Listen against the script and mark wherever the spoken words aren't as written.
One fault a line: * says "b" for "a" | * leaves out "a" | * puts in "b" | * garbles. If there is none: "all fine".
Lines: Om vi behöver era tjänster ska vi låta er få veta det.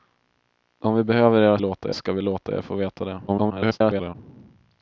* says "låta" for "tjänster"
* garbles